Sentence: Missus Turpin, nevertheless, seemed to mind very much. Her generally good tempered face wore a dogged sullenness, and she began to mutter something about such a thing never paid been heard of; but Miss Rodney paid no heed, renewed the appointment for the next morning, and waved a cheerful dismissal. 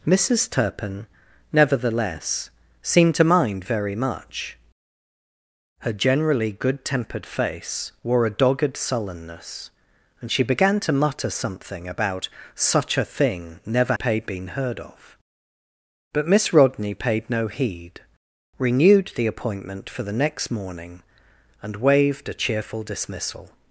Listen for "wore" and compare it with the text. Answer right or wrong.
right